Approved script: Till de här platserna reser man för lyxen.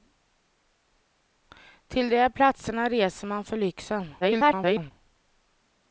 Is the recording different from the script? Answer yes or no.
yes